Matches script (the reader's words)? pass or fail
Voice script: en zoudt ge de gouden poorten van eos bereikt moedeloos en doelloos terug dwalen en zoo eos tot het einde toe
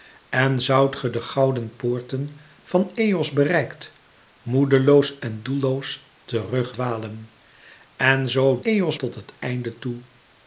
pass